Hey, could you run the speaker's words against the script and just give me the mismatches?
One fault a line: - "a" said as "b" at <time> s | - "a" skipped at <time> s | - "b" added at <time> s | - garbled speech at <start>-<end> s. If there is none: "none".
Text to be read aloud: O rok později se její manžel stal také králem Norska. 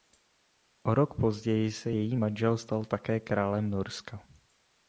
none